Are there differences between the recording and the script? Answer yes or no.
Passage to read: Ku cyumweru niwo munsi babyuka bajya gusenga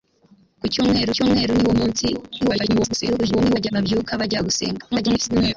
yes